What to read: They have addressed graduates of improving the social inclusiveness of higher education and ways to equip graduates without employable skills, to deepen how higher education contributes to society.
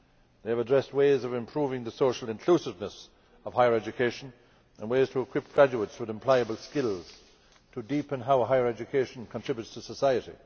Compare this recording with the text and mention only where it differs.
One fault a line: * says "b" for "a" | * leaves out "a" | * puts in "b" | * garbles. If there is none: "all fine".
* says "ways" for "graduates"
* says "with" for "without"